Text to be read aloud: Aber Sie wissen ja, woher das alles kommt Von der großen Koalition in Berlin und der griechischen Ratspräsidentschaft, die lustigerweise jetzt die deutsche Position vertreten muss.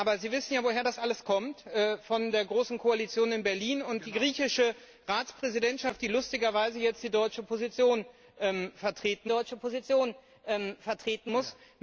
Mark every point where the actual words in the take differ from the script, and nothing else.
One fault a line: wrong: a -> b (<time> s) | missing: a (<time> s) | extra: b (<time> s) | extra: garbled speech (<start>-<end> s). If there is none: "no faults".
extra: deutsche Position vertreten (9.2 s)